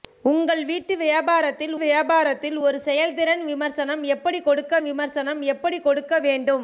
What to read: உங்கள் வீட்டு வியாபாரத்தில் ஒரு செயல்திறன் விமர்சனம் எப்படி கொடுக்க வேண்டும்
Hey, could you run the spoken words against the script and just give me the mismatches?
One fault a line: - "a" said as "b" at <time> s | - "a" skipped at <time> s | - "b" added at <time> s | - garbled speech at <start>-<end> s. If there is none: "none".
- "வியாபாரத்தில்" added at 1.8 s
- "விமர்சனம் எப்படி கொடுக்க" added at 4.8 s